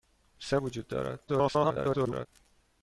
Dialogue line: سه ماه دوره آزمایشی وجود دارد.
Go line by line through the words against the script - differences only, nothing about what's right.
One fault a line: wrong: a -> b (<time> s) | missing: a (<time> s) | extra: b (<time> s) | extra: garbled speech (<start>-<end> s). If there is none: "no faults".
missing: ماه دوره آزمایشی (0.6 s)
extra: garbled speech (1.3-2.3 s)